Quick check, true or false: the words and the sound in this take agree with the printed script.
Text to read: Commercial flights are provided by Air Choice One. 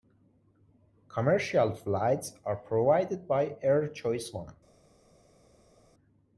true